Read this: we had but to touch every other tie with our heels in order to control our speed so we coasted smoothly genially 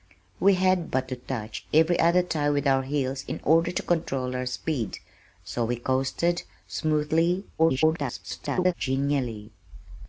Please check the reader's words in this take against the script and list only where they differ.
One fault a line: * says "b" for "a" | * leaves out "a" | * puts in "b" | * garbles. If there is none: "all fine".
* garbles